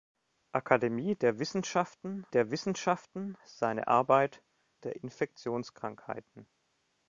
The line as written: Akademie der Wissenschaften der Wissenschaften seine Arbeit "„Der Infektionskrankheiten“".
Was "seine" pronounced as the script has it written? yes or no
yes